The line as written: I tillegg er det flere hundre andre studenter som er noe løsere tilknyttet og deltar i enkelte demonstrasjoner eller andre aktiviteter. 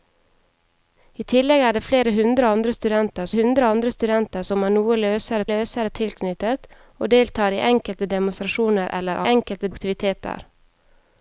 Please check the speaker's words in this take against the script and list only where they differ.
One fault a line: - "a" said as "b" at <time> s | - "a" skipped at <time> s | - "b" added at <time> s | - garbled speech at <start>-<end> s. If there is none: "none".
- "hundre andre studenter" added at 3.3 s
- "løsere" added at 5.5 s
- "andre" said as "enkelte" at 9.3 s